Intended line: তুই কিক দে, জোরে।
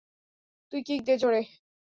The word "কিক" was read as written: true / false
true